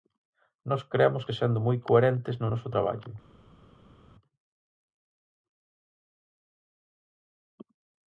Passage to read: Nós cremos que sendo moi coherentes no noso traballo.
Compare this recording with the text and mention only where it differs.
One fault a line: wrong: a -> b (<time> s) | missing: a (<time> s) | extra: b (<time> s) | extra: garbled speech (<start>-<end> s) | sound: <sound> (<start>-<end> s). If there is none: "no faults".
no faults